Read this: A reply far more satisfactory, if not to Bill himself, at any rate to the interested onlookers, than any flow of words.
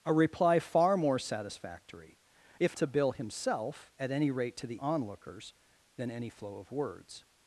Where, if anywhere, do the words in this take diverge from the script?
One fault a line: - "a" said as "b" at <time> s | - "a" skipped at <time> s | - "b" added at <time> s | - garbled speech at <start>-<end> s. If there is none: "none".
- "not" skipped at 2.8 s
- "interested" skipped at 4.8 s